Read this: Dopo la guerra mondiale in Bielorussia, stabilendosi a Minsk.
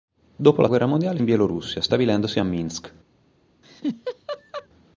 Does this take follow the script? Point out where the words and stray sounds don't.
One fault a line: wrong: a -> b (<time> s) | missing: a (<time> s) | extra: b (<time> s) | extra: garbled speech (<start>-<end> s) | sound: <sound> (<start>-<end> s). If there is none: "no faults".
sound: laugh (3.6-4.7 s)